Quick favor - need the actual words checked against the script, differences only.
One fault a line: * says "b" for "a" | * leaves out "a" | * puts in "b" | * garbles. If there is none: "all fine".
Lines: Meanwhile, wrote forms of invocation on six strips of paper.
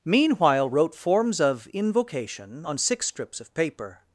all fine